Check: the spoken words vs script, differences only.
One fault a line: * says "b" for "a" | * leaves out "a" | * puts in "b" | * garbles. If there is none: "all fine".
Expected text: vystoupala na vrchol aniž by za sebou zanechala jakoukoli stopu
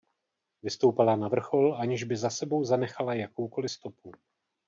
all fine